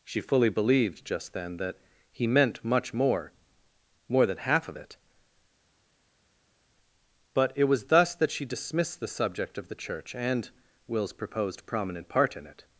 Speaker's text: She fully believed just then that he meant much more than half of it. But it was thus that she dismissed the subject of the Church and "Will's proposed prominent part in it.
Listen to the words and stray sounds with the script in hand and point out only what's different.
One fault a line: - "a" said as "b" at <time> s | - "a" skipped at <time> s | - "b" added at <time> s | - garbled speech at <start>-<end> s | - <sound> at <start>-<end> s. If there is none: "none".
- "more" added at 4.1 s